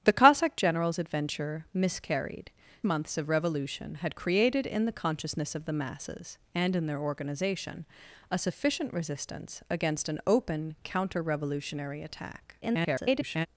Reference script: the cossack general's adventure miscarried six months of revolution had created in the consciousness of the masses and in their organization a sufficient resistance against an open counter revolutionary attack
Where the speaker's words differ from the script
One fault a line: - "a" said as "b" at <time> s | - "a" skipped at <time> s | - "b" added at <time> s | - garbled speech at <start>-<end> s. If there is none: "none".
- "six" skipped at 2.5 s
- garbled speech at 12.6-13.5 s